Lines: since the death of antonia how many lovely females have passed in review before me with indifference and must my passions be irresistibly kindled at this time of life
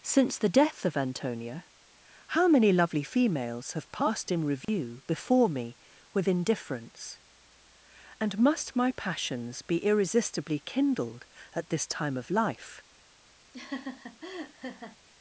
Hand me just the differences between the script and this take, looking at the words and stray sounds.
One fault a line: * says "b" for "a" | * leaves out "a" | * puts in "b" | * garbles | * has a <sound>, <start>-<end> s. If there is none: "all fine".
* has a dropout, 4.6-4.7 s
* has a laugh, 13.5-15.0 s